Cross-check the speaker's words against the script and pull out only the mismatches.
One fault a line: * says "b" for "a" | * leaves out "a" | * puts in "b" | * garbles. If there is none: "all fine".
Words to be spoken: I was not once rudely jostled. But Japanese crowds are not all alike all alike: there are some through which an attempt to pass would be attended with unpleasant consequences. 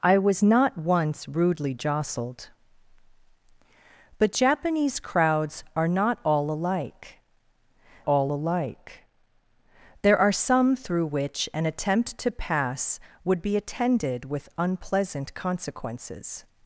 all fine